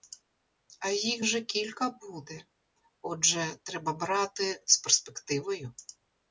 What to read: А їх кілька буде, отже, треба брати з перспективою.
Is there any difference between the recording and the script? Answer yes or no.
yes